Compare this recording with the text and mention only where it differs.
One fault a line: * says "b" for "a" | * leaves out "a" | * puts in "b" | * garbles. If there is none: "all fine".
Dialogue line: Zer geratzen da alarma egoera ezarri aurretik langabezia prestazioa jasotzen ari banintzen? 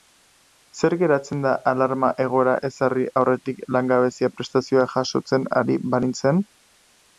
all fine